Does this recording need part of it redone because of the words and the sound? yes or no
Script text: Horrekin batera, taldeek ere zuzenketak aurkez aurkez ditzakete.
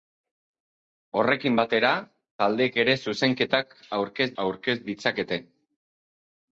no